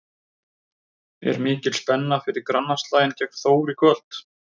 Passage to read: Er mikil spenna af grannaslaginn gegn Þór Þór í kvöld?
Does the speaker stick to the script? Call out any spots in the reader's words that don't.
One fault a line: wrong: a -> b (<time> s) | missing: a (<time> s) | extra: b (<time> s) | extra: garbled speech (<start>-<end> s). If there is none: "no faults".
wrong: af -> fyrir (2.2 s)
missing: Þór (3.8 s)